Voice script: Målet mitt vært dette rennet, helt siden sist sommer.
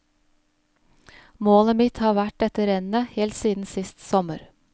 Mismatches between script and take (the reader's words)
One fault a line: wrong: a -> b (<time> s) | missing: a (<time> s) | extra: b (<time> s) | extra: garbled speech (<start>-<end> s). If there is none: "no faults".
extra: har (2.0 s)